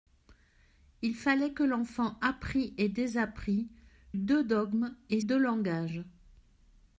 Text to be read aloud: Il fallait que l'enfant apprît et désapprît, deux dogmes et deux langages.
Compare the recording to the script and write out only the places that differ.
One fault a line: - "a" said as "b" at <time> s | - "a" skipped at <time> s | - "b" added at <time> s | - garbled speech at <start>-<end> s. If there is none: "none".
none